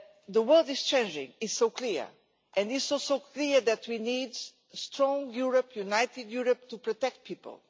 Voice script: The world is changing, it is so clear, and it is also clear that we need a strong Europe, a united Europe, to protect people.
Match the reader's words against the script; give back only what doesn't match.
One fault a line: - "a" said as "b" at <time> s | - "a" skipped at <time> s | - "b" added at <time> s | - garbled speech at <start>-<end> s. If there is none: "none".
none